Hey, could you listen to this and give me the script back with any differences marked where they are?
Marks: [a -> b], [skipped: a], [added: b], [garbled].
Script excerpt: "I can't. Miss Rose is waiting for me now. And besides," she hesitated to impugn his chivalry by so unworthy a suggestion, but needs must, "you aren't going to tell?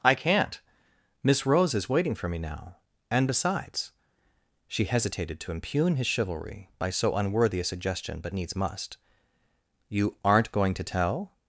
"I can't. Miss Rose is waiting for me now. And besides," she hesitated to impugn his chivalry by so unworthy a suggestion, but needs must, "you aren't going to tell?